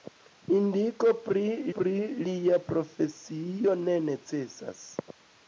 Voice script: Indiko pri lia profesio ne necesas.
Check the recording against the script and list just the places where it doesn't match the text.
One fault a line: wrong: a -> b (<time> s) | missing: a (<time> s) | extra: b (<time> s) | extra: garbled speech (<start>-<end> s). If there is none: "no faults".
extra: pri (1.8 s)